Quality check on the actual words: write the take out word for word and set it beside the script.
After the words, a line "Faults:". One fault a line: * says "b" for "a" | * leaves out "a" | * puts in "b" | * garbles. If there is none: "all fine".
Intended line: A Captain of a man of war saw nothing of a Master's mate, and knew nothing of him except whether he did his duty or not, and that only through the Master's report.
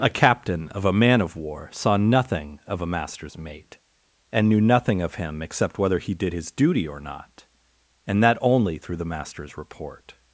A Captain of a man of war saw nothing of a Master's mate, and knew nothing of him except whether he did his duty or not, and that only through the Master's report.
Faults:
all fine